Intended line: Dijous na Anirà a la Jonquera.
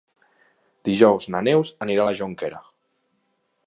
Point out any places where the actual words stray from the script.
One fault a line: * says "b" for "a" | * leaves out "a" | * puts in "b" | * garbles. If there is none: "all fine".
* puts in "Neus"